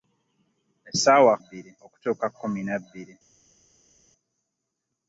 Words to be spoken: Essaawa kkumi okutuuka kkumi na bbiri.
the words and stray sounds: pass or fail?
fail